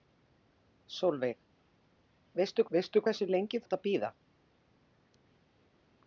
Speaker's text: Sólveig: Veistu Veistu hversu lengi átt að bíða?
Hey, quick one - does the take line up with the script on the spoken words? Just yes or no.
yes